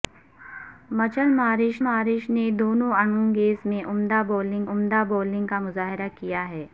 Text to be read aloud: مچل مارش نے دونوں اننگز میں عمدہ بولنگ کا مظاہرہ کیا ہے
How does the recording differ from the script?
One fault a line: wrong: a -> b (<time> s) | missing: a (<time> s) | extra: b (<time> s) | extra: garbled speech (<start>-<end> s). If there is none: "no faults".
extra: مارش (1.8 s)
extra: عمدہ بولنگ (4.7 s)